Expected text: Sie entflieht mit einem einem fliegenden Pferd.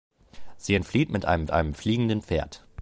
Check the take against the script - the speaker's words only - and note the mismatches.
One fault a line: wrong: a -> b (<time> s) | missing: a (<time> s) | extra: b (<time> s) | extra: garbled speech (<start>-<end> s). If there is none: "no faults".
no faults